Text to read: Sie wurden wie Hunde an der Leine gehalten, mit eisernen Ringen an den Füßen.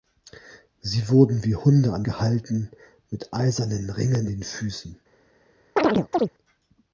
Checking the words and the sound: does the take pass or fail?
fail